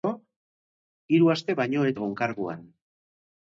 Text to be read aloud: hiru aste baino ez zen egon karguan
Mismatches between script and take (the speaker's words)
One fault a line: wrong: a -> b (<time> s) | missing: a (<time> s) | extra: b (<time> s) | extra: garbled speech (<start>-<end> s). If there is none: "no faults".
missing: zen (1.9 s)